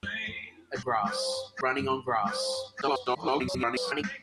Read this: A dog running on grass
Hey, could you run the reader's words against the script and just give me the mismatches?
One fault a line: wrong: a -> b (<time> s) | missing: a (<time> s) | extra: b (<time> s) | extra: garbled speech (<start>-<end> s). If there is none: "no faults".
wrong: dog -> grass (0.8 s)
extra: garbled speech (2.8-4.0 s)